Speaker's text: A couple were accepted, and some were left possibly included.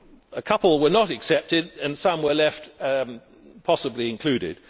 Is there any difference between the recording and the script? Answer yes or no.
yes